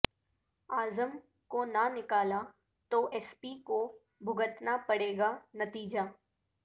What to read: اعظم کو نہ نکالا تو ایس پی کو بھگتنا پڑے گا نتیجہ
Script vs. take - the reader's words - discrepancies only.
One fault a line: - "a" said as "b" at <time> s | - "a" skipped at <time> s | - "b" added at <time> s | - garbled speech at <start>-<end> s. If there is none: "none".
none